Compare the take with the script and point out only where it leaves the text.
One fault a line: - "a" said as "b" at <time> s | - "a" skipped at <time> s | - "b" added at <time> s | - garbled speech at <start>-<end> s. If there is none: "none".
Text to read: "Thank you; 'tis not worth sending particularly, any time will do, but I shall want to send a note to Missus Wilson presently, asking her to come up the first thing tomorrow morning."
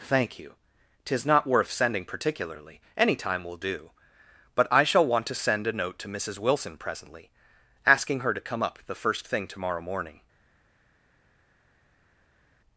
none